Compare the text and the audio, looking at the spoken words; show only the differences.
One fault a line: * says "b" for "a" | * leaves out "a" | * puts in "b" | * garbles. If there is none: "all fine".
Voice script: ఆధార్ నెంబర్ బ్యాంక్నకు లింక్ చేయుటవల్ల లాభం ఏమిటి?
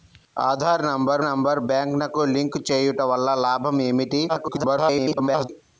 * puts in "నెంబర్"
* garbles